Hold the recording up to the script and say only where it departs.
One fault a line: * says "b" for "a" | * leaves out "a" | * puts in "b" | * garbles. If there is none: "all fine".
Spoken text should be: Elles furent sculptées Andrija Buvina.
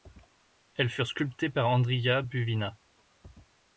* puts in "par"